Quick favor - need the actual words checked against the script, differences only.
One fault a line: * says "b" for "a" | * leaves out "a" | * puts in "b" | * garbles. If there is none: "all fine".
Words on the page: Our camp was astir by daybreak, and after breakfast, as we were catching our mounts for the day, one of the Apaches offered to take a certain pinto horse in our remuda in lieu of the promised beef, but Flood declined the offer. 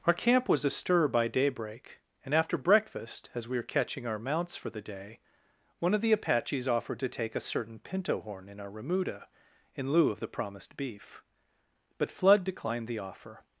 * says "horn" for "horse"